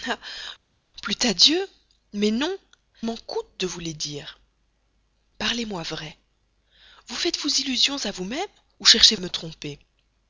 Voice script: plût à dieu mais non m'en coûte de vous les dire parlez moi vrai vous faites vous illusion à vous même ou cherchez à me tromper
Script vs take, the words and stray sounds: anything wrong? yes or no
no